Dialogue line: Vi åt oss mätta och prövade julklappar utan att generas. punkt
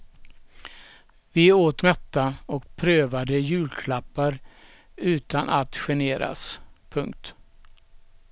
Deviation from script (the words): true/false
true